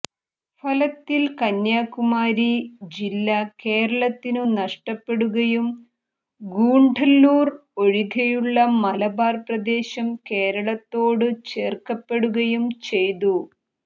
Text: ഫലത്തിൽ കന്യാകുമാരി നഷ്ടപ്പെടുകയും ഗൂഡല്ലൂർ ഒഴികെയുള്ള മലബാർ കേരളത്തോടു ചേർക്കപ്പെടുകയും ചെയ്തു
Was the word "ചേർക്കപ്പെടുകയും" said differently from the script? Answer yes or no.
no